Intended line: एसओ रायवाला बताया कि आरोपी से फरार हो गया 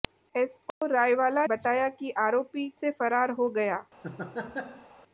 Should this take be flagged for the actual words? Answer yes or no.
no